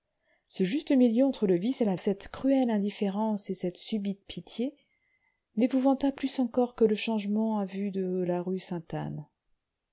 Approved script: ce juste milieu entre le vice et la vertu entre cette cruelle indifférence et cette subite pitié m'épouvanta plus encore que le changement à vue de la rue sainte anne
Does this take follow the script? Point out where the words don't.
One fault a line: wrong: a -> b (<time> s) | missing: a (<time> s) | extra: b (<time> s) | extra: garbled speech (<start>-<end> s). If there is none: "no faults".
missing: vertu entre (2.0 s)